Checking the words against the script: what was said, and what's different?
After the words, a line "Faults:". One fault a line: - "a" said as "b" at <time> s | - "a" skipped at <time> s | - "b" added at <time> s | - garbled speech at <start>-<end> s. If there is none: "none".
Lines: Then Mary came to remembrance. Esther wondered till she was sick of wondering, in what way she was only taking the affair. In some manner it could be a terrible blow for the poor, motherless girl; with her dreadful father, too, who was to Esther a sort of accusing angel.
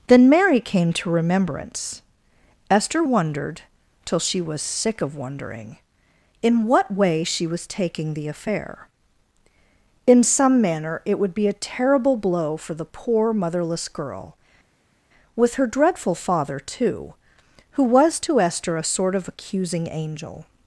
Then Mary came to remembrance. Esther wondered till she was sick of wondering, in what way she was taking the affair. In some manner it would be a terrible blow for the poor, motherless girl; with her dreadful father, too, who was to Esther a sort of accusing angel.
Faults:
- "only" skipped at 7.7 s
- "could" said as "would" at 11.2 s